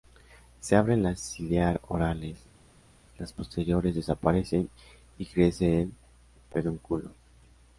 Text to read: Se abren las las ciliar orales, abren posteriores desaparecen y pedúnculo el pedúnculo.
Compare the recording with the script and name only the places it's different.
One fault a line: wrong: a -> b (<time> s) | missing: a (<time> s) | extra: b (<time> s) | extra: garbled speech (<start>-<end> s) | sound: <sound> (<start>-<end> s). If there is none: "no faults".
missing: las (1.2 s)
wrong: abren -> las (3.2 s)
wrong: pedúnculo -> crece (5.3 s)